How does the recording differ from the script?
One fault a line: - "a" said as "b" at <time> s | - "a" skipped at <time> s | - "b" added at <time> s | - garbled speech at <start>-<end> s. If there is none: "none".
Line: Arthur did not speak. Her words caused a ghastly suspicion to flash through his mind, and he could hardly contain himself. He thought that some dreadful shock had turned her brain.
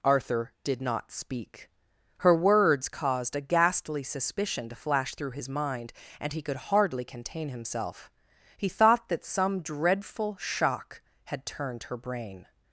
none